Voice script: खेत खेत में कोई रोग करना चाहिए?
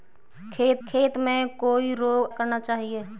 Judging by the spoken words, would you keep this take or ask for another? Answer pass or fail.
pass